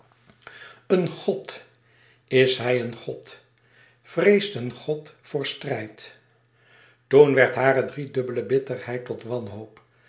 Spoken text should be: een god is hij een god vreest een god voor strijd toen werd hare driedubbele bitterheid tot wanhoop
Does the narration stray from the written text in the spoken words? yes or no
no